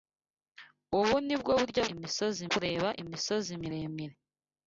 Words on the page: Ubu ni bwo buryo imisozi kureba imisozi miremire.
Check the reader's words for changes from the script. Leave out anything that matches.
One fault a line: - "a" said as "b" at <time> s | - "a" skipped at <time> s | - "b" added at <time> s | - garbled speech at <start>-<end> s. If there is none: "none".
none